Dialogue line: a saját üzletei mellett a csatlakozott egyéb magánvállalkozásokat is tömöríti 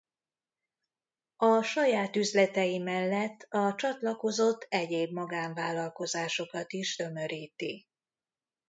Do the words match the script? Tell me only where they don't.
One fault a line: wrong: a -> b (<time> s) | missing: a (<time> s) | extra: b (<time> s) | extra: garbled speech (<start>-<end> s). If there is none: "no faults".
no faults